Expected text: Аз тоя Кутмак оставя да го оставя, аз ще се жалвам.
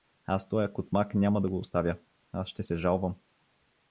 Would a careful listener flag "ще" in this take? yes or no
no